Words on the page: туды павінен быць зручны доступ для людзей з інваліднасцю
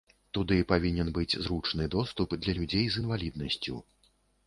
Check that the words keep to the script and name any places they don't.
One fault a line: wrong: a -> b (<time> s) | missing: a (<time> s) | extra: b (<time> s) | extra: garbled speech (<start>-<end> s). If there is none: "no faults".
no faults